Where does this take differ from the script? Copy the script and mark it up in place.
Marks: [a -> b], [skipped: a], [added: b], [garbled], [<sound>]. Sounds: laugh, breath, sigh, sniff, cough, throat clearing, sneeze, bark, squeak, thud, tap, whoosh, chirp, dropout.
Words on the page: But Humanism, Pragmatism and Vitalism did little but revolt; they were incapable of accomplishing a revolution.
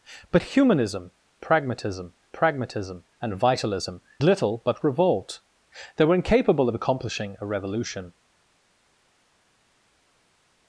But Humanism, Pragmatism [added: Pragmatism] and Vitalism [skipped: did] little but revolt; they were incapable of accomplishing a revolution.